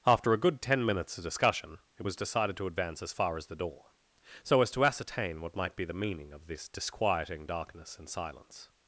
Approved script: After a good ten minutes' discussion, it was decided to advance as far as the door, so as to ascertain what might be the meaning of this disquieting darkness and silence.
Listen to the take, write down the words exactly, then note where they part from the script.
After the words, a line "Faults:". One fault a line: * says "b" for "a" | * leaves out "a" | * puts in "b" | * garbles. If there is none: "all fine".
After a good ten minutes' of discussion, it was decided to advance as far as the door, so as to ascertain what might be the meaning of this disquieting darkness and silence.
Faults:
* puts in "of"